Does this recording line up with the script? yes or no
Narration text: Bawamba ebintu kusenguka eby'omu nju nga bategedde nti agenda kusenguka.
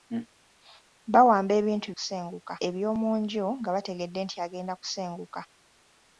yes